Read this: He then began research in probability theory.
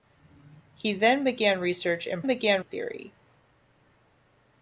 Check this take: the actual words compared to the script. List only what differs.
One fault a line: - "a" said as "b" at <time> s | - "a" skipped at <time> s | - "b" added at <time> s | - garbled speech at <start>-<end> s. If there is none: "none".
- "probability" said as "began" at 2.3 s